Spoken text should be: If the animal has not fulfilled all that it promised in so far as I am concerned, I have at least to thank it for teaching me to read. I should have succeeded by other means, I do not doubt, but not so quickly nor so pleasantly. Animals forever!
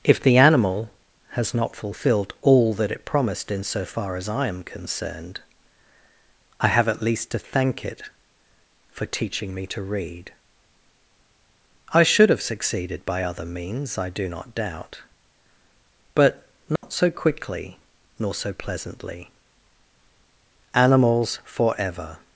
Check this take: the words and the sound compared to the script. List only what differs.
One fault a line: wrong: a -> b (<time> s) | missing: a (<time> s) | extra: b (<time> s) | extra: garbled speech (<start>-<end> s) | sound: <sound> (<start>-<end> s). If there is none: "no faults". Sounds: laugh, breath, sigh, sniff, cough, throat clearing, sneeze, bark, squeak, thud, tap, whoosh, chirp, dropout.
sound: dropout (16.8-16.8 s)